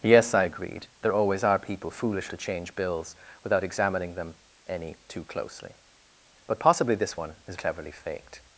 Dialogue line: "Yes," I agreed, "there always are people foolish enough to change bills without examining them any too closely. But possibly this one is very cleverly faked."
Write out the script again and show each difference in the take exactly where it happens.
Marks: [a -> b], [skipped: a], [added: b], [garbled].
"Yes," I agreed, "there always are people foolish [skipped: enough] to change bills without examining them any too closely. But possibly this one is [skipped: very] cleverly faked."